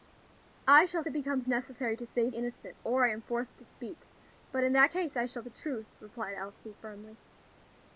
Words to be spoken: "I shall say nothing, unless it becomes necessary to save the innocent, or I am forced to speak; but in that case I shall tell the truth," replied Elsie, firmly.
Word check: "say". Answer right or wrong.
wrong